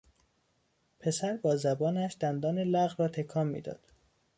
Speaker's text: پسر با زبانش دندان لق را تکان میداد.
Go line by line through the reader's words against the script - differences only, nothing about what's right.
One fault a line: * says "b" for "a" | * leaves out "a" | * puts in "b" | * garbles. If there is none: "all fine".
all fine